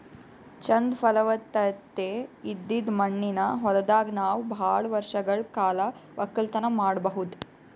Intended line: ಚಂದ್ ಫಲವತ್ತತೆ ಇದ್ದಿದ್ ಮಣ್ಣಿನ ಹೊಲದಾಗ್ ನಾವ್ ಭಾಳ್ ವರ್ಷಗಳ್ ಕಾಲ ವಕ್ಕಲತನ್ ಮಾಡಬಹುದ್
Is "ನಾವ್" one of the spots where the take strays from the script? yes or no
no